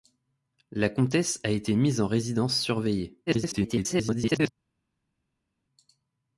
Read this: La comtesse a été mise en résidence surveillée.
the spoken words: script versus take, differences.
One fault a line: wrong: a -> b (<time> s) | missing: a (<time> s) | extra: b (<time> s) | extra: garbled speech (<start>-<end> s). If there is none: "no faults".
extra: garbled speech (3.3-4.5 s)